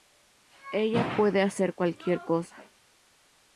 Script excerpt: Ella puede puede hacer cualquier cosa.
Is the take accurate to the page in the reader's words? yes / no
no